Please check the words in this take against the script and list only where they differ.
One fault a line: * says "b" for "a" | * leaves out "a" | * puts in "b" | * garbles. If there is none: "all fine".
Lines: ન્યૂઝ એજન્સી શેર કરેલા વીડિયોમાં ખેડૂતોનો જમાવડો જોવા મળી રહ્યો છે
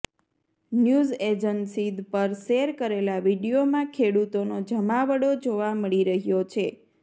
* puts in "પર"